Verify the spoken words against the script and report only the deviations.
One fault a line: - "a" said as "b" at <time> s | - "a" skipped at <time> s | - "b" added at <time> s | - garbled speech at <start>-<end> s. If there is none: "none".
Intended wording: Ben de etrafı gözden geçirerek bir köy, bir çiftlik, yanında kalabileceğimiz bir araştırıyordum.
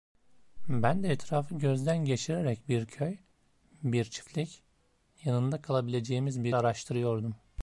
none